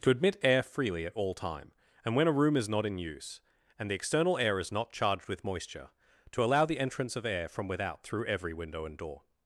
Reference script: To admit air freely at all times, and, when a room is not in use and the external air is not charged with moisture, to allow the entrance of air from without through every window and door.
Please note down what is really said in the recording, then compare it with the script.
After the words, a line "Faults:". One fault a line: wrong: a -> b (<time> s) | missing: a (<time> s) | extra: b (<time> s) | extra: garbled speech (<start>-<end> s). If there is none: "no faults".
To admit air freely at all time, and, when a room is not in use and the external air is not charged with moisture, to allow the entrance of air from without through every window and door.
Faults:
wrong: times -> time (1.3 s)